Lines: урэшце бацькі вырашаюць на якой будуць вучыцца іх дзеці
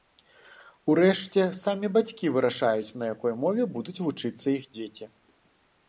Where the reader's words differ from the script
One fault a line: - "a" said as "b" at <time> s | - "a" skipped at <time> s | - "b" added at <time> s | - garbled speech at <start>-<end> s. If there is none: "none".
- "самі" added at 1.6 s
- "мове" added at 3.5 s